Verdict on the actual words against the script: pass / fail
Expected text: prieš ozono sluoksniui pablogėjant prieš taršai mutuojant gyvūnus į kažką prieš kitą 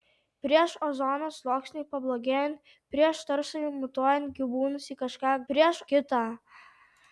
pass